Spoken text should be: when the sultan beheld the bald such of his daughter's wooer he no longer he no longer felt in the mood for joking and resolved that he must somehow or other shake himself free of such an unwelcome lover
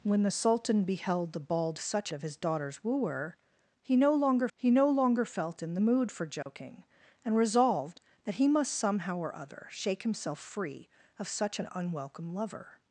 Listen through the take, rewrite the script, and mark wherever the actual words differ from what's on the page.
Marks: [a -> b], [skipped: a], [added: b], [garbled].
when the sultan beheld the bald such of his daughter's wooer he no longer he no longer felt in the mood for joking and resolved that he must somehow or other shake himself free of such an unwelcome lover